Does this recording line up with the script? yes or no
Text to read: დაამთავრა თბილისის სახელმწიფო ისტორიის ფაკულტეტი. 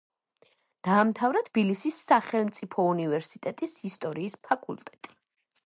no